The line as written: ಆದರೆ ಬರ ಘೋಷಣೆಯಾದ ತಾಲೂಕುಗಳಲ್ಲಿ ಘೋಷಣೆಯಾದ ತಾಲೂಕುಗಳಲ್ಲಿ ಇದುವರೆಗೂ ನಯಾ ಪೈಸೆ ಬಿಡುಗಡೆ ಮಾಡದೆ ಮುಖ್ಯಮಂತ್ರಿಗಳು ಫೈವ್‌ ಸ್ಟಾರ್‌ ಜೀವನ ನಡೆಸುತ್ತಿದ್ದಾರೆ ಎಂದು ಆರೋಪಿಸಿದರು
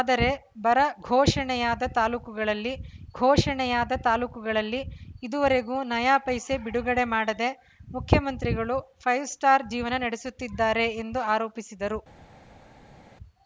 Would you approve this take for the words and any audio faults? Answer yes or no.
yes